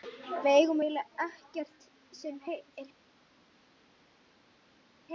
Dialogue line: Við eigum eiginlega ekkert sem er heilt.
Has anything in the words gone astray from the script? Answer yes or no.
no